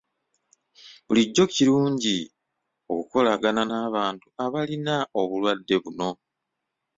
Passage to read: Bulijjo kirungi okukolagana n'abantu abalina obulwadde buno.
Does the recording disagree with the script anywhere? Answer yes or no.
no